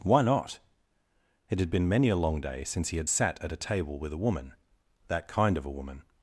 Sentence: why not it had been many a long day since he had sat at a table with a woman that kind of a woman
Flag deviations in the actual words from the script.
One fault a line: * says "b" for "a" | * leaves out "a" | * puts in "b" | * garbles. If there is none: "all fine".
all fine